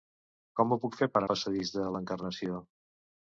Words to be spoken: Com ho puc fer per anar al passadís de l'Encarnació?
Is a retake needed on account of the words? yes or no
yes